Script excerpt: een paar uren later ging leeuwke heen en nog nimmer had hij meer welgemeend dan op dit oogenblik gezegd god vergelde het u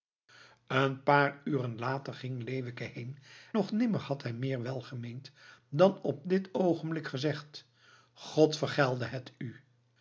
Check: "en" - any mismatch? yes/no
yes